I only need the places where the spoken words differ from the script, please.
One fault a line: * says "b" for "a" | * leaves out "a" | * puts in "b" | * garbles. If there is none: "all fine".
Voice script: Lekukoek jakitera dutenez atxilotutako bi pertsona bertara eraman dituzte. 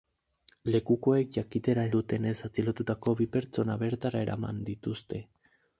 all fine